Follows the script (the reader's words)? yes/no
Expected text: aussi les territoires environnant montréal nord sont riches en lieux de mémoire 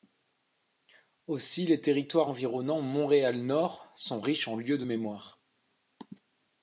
yes